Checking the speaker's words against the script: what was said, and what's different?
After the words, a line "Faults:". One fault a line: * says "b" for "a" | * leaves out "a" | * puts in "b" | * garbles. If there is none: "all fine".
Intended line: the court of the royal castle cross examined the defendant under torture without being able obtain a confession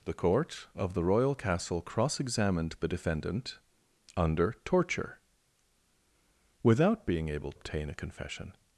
the court of the royal castle cross examined the defendant under torture without being able obtain a confession
Faults:
all fine